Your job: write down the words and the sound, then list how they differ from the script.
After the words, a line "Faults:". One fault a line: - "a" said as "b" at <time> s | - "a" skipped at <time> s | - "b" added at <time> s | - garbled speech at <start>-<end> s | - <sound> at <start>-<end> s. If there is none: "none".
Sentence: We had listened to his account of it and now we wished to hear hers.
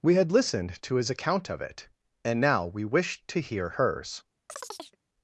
We had listened to his account of it and now we wished to hear hers.
Faults:
- chirp at 4.5-5.0 s